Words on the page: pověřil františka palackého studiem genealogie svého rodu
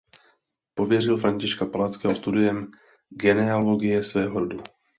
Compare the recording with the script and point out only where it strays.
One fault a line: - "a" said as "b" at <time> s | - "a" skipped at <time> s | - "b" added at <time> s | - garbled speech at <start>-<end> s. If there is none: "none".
none